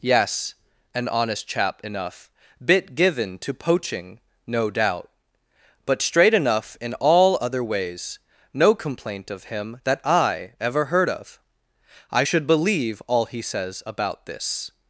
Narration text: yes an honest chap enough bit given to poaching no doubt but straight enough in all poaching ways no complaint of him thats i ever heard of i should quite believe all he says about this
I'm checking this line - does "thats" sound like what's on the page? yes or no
no